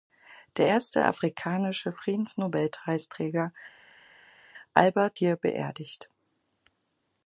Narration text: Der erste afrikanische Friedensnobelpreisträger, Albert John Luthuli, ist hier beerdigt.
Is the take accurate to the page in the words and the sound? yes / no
no